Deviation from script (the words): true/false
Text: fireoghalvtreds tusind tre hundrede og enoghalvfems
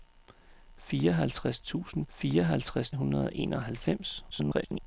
true